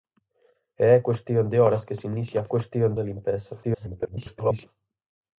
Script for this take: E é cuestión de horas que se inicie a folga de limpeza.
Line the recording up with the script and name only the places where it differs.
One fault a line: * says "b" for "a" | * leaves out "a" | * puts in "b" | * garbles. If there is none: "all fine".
* says "cuestión" for "folga"
* garbles